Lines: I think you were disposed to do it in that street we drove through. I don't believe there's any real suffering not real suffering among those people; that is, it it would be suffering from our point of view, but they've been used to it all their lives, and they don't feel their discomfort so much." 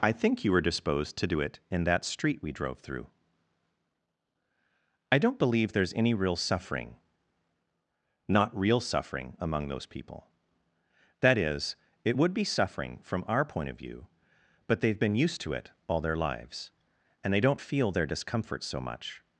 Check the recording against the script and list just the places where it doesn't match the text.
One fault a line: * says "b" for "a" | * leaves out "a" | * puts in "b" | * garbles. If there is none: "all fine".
* leaves out "it"